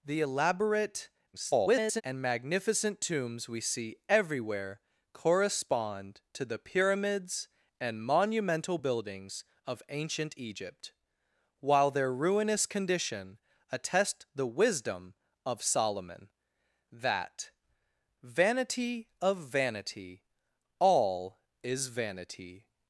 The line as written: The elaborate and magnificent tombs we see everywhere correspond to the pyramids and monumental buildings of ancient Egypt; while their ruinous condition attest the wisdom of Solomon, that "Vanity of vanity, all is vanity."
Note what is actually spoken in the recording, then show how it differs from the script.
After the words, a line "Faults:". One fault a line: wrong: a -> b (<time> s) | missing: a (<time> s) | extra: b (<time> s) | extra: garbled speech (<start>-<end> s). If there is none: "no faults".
The elaborate [garbled] and magnificent tombs we see everywhere correspond to the pyramids and monumental buildings of ancient Egypt; while their ruinous condition attest the wisdom of Solomon, that "Vanity of vanity, all is vanity."
Faults:
extra: garbled speech (1.3-2.0 s)